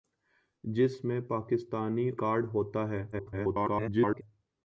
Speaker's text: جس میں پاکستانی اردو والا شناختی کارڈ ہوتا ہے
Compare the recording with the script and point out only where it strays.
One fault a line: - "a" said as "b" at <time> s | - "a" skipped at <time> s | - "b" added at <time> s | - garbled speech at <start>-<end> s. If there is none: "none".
- "اردو والا شناختی" skipped at 2.1 s
- garbled speech at 3.1-4.2 s